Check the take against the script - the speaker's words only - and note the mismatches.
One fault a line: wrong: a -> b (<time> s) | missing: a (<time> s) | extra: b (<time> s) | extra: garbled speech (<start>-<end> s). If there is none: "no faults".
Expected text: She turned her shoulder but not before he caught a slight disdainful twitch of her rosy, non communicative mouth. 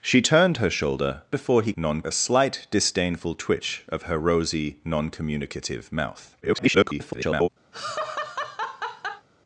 missing: but not (1.2 s)
wrong: caught -> non (1.8 s)
extra: garbled speech (6.4-7.5 s)